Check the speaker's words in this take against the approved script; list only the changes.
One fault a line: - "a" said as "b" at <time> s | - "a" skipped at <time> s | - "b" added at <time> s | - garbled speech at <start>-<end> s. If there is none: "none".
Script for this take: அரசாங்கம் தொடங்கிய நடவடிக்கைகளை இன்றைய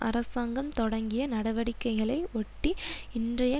- "ஒட்டி" added at 2.3 s